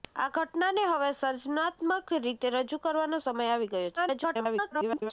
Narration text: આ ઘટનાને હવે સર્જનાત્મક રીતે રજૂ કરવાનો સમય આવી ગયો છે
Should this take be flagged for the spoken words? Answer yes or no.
yes